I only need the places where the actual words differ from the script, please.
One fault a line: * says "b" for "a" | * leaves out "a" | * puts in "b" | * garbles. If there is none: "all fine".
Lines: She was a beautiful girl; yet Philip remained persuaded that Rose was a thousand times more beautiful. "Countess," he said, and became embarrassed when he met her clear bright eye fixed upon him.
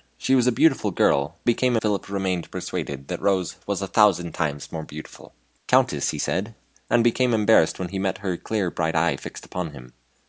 * says "became" for "yet"